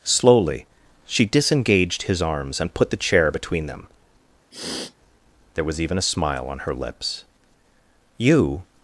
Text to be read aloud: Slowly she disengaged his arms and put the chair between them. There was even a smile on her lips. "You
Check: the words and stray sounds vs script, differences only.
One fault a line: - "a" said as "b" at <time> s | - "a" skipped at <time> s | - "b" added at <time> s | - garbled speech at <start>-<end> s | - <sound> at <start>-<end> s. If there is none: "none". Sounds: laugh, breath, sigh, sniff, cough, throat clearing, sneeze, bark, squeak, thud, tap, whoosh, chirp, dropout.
- sniff at 4.5-4.9 s